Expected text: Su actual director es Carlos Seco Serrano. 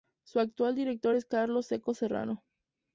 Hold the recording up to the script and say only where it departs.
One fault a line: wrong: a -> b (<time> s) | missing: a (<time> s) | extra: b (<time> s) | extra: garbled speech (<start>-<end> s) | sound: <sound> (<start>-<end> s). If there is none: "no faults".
no faults